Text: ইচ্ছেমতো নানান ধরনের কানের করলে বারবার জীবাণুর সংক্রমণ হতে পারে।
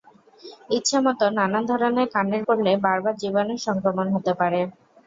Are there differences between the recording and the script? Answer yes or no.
no